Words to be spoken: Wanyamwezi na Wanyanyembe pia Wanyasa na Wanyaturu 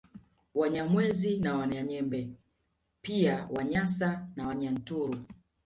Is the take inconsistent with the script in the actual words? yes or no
no